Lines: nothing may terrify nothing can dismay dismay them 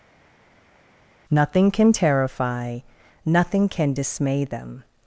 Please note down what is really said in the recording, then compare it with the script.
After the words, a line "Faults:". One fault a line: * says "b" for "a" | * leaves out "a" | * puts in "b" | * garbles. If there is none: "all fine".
nothing can terrify nothing can dismay them
Faults:
* says "can" for "may"
* leaves out "dismay"